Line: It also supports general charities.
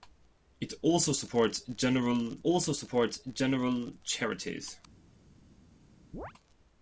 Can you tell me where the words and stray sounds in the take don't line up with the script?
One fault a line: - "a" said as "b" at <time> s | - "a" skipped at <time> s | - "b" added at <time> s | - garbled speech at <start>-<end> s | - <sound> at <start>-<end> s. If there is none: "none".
- "also supports general" added at 2.4 s
- chirp at 6.1-6.3 s